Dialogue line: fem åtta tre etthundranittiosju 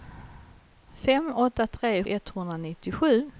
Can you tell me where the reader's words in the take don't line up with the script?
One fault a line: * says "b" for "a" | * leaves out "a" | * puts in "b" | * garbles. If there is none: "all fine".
all fine